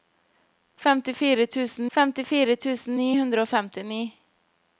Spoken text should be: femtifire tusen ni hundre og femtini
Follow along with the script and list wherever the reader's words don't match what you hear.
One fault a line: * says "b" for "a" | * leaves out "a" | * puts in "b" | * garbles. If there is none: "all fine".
* puts in "femtifire tusen"